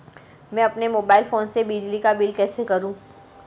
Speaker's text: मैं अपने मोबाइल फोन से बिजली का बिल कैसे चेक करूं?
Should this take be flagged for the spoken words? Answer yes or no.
yes